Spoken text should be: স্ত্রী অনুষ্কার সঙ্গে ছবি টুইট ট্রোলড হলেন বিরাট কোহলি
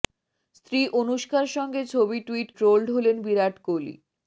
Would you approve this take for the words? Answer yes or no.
yes